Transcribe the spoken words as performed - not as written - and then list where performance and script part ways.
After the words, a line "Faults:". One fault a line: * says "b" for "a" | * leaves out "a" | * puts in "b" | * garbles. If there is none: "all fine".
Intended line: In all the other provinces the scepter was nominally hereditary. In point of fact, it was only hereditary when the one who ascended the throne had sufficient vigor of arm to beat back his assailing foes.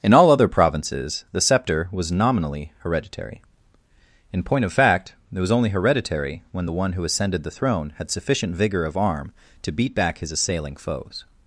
In all other provinces the scepter was nominally hereditary. In point of fact, it was only hereditary when the one who ascended the throne had sufficient vigor of arm to beat back his assailing foes.
Faults:
* leaves out "the"